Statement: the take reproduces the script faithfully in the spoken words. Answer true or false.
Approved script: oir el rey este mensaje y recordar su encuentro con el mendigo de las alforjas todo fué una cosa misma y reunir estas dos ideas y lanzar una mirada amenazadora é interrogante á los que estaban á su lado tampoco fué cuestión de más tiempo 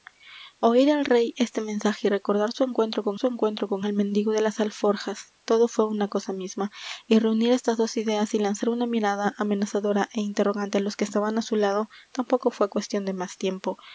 false